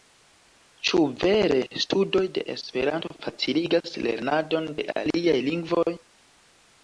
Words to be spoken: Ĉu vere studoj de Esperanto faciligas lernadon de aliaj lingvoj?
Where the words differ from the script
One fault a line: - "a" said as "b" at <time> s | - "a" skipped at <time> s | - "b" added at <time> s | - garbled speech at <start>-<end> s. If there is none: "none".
none